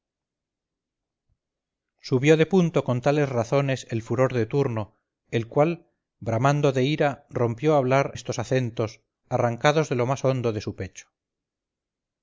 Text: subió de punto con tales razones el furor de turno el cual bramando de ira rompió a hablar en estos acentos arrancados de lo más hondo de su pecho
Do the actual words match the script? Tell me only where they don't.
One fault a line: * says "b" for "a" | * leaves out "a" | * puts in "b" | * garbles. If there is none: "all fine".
* leaves out "en"